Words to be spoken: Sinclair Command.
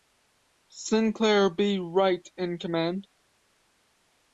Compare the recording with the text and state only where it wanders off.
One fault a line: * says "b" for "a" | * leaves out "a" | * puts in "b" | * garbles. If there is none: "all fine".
* puts in "B Wright in"